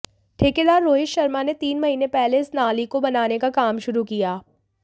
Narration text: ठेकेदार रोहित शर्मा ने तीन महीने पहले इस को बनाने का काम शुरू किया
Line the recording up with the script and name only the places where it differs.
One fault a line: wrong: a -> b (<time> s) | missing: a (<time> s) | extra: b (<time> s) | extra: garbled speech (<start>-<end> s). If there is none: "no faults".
extra: नाली (2.5 s)